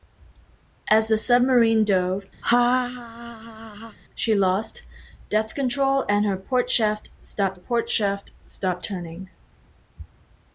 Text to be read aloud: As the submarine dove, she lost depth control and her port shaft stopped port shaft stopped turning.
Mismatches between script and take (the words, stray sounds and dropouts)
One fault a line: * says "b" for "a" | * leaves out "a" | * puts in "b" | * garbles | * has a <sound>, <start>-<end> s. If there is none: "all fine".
* has a laugh, 2.4-4.0 s